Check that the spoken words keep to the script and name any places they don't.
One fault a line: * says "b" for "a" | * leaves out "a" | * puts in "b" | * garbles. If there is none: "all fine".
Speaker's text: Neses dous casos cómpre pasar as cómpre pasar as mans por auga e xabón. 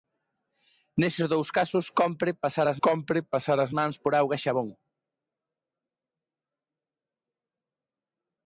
all fine